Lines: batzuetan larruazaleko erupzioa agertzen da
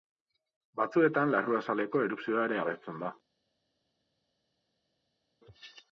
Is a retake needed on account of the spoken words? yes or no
yes